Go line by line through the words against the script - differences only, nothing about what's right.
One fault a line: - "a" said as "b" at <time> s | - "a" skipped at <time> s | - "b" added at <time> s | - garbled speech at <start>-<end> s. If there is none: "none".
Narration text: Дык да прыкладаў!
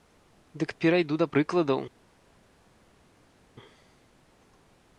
- "перайду" added at 0.8 s